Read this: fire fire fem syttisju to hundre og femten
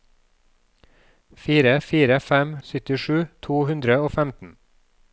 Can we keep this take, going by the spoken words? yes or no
yes